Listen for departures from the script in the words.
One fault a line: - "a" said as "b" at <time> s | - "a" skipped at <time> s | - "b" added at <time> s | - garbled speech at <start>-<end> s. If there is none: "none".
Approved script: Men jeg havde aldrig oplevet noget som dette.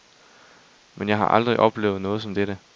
- "havde" said as "har" at 1.2 s